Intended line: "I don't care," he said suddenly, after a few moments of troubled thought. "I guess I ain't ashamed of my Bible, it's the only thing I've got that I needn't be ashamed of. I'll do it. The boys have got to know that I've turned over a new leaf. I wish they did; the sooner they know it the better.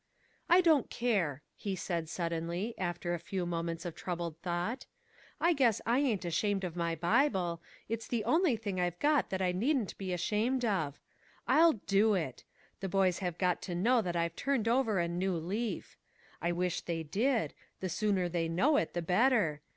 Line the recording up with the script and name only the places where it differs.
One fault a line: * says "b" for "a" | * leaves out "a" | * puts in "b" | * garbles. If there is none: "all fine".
all fine